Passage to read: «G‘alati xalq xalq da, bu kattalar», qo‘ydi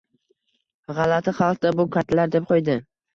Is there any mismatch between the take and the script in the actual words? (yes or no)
yes